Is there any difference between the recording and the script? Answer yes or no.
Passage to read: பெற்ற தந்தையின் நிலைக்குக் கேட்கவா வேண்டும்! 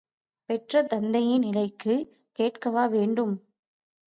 no